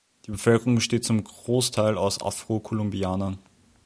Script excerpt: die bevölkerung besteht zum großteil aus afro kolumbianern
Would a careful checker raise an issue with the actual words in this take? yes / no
no